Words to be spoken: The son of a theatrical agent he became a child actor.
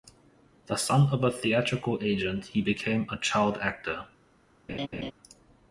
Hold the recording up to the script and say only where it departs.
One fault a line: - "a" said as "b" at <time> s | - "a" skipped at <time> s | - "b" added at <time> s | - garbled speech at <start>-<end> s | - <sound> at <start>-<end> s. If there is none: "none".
- laugh at 4.7-5.1 s